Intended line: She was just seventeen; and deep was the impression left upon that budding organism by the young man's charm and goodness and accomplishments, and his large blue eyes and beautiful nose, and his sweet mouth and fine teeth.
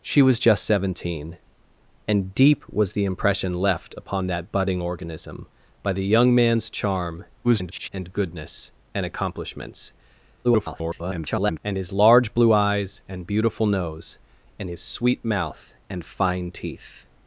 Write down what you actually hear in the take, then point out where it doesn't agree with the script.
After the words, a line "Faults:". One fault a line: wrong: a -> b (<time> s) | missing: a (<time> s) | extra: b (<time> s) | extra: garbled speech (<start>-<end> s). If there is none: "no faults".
She was just seventeen; and deep was the impression left upon that budding organism by the young man's charm [garbled] and goodness and accomplishments, [garbled] and his large blue eyes and beautiful nose, and his sweet mouth and fine teeth.
Faults:
extra: garbled speech (7.4-7.9 s)
extra: garbled speech (10.4-11.6 s)